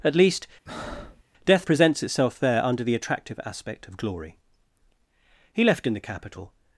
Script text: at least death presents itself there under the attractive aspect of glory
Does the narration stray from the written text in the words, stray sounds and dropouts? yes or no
yes